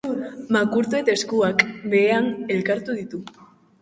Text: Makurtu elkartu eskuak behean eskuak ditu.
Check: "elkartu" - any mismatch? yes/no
yes